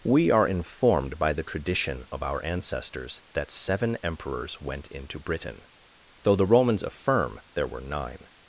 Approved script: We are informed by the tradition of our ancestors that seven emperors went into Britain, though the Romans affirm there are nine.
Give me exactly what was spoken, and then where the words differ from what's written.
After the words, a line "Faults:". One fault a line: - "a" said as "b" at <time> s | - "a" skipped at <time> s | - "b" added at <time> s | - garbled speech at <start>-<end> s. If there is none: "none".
We are informed by the tradition of our ancestors that seven emperors went into Britain, though the Romans affirm there were nine.
Faults:
- "are" said as "were" at 7.7 s